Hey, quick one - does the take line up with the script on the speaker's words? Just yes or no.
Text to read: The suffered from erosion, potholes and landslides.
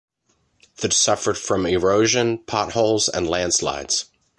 yes